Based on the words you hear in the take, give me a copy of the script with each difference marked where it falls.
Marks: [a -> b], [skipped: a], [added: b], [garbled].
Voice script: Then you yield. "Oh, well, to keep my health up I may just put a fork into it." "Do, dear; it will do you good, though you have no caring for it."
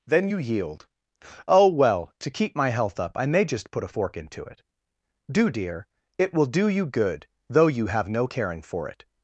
Then you yield. "Oh, well, to keep my health up I may just put a fork into it." "Do, dear; it will do you good, though you have no caring for it."